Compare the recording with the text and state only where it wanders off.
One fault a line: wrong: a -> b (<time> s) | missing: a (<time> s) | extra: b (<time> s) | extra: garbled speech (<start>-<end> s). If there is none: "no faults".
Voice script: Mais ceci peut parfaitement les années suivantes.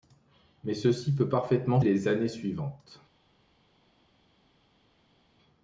no faults